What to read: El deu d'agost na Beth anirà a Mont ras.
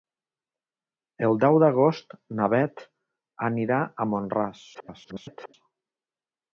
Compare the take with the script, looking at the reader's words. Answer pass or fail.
fail